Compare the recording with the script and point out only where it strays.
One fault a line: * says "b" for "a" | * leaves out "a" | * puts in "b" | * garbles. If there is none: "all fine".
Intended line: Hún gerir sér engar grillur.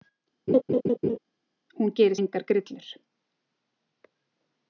* leaves out "sér"